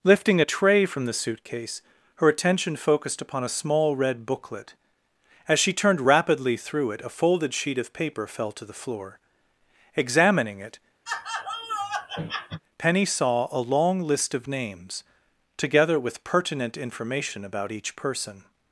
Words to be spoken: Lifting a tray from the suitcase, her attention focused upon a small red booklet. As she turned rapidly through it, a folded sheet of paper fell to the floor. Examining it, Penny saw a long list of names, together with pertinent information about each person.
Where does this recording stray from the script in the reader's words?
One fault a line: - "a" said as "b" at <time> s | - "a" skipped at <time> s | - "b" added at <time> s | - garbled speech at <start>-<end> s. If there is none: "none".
none